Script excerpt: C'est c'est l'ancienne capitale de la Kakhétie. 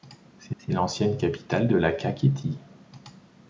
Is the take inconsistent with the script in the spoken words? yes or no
no